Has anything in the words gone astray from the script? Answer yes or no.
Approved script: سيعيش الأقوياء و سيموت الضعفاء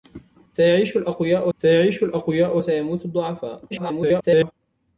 yes